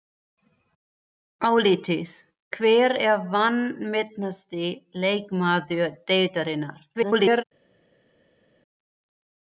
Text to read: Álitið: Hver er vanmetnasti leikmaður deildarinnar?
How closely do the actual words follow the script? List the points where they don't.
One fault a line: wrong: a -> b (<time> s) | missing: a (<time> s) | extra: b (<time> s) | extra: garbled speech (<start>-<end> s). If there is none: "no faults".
extra: garbled speech (6.9-7.4 s)